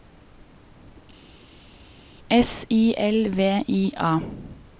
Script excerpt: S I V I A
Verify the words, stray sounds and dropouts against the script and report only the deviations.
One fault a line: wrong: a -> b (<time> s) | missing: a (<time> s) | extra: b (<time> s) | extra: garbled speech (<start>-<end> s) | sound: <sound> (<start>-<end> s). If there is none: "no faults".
extra: L (3.0 s)